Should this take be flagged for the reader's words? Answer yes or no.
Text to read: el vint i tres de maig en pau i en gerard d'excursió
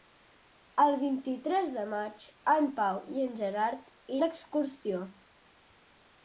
no